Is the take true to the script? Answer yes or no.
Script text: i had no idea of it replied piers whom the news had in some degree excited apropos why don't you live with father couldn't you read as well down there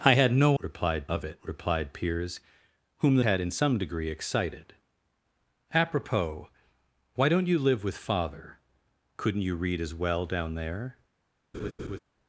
no